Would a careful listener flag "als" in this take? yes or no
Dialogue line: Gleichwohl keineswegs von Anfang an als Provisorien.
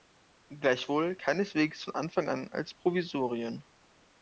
no